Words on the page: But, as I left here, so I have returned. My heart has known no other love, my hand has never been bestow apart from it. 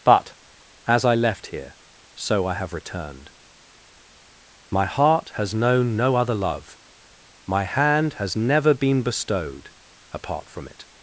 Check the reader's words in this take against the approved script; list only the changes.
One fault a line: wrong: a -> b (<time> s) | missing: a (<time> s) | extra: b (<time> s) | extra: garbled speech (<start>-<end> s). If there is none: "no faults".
wrong: bestow -> bestowed (9.0 s)